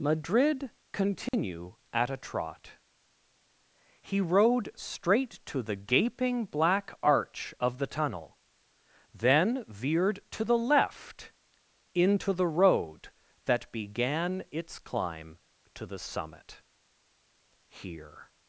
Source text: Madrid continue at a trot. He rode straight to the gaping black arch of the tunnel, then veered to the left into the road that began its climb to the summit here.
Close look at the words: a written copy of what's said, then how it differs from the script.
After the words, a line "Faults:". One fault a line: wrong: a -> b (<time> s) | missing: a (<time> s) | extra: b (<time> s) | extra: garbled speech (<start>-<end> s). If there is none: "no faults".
Madrid continue at a trot. He rode straight to the gaping black arch of the tunnel, then veered to the left into the road that began its climb to the summit here.
Faults:
no faults